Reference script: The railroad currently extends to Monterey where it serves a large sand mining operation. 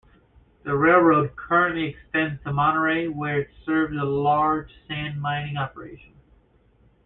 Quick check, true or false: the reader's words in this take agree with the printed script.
true